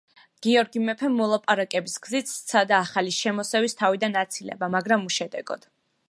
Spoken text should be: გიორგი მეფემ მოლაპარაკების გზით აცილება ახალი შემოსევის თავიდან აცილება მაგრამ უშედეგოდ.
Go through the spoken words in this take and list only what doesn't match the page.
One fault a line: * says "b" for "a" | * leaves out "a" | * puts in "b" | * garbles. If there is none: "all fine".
* says "სცადა" for "აცილება"